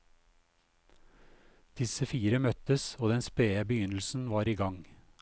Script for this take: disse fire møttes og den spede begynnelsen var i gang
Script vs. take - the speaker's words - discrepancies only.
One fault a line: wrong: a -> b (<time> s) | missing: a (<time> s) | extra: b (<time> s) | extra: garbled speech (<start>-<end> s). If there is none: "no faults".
no faults